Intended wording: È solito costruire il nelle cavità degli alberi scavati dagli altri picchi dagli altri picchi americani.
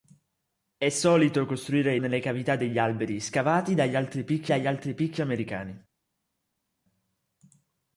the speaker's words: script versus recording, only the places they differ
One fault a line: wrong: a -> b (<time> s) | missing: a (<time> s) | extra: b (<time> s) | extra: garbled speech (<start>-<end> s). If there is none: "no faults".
no faults